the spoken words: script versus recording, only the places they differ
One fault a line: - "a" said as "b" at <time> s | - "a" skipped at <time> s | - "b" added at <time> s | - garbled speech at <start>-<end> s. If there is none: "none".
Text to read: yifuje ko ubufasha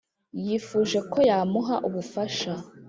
- "yamuha" added at 1.3 s